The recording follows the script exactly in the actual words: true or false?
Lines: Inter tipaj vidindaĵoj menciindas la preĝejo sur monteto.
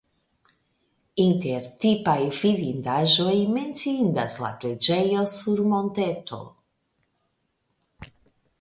true